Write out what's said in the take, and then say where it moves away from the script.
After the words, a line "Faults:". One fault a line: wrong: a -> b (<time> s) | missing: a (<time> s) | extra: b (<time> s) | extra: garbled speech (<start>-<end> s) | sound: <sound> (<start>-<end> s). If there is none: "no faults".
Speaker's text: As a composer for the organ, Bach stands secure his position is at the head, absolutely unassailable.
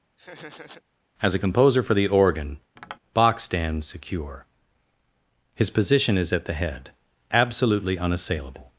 As a composer for the organ, Bach stands secure his position is at the head, absolutely unassailable.
Faults:
sound: laugh (0.2-0.8 s)
sound: tap (2.8-3.0 s)